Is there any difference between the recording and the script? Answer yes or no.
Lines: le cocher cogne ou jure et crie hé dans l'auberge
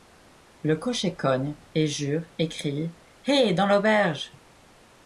yes